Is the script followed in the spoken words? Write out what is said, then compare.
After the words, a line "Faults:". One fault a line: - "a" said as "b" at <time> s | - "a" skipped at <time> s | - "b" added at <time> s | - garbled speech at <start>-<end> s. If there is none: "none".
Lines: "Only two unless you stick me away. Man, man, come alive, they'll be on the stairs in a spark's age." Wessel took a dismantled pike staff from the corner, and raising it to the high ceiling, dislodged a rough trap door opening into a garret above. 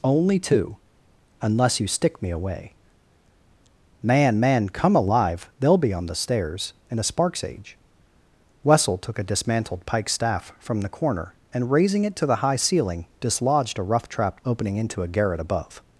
"Only two unless you stick me away. Man, man, come alive, they'll be on the stairs in a spark's age." Wessel took a dismantled pike staff from the corner, and raising it to the high ceiling, dislodged a rough trap opening into a garret above.
Faults:
- "door" skipped at 14.4 s